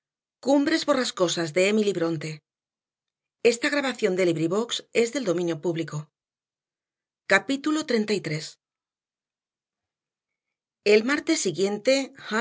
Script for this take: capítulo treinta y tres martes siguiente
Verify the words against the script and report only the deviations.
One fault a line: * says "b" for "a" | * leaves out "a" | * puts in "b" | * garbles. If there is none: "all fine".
* puts in "el"